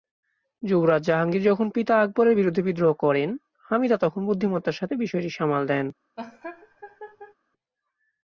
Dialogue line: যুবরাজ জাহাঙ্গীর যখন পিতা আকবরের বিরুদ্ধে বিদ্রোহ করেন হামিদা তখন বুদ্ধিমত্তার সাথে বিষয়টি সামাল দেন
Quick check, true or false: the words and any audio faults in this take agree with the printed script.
false